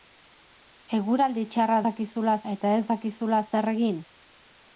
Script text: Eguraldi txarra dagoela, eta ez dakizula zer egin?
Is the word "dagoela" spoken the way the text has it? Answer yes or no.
no